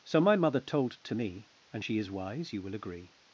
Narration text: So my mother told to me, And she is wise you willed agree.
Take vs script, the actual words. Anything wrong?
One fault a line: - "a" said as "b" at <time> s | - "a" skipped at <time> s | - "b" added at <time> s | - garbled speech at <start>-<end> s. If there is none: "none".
- "willed" said as "will" at 2.6 s